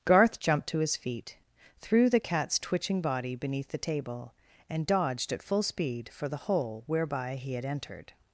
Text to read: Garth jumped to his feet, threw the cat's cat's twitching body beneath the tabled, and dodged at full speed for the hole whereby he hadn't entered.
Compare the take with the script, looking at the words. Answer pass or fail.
fail